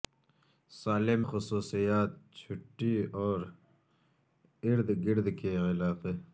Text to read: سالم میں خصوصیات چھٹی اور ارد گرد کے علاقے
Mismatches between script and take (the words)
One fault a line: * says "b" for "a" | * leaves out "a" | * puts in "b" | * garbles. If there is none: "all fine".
* leaves out "میں"